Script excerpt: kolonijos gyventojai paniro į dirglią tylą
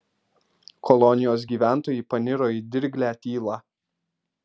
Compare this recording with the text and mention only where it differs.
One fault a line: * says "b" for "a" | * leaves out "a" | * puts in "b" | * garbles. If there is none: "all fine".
all fine